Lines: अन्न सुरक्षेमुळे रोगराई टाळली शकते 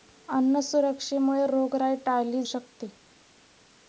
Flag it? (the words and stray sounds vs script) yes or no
no